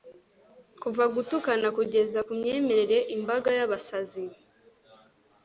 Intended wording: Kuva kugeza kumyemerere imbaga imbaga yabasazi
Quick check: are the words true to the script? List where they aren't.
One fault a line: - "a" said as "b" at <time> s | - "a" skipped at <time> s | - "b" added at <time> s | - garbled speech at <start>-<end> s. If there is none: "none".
- "gutukana" added at 1.1 s
- "imbaga" skipped at 3.5 s